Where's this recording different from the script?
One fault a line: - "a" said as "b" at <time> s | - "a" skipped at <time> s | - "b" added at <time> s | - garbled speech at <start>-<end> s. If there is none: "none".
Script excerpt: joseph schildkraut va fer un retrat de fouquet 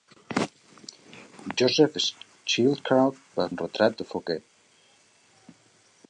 - "fer" skipped at 3.5 s